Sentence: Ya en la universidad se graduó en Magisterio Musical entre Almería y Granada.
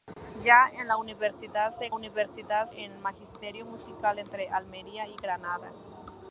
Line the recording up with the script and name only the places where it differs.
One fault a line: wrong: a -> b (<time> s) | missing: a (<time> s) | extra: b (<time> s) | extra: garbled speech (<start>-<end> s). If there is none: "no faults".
wrong: graduó -> universidad (1.9 s)